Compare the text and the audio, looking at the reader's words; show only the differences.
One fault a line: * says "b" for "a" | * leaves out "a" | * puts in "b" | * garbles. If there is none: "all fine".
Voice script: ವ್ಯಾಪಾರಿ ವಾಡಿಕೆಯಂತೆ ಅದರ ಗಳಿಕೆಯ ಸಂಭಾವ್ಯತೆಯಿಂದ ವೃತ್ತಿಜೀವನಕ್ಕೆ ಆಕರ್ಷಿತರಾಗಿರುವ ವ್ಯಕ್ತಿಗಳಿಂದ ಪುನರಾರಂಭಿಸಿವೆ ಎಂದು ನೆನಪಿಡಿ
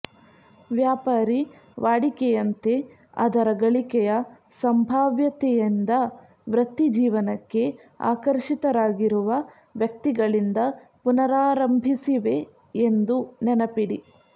all fine